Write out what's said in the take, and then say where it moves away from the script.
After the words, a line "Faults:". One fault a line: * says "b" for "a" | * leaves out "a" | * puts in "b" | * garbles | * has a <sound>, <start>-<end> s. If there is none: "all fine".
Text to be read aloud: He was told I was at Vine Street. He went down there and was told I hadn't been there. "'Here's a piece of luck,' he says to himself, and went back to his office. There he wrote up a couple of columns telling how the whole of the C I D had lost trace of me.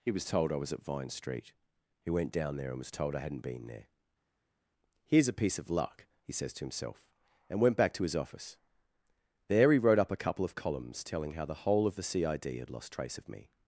He was told I was at Vine Street. He went down there and was told I hadn't been there. "'Here's a piece of luck,' he says to himself, and went back to his office. There he wrote up a couple of columns telling how the whole of the C I D had lost trace of me.
Faults:
all fine